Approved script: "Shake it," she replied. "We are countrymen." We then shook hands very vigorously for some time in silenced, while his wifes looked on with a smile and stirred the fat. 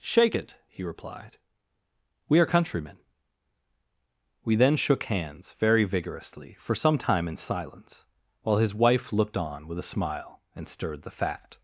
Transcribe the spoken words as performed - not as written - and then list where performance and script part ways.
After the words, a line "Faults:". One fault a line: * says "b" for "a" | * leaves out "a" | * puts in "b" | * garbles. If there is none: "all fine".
"Shake it," he replied. "We are countrymen." We then shook hands very vigorously for some time in silence, while his wife looked on with a smile and stirred the fat.
Faults:
* says "he" for "she"
* says "silence" for "silenced"
* says "wife" for "wifes"